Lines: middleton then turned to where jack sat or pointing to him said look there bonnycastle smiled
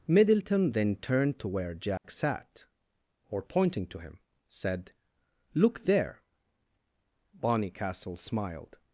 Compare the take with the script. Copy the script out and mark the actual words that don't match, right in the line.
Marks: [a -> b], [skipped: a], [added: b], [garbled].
middleton then turned to where jack sat or pointing to him said look there bonnycastle smiled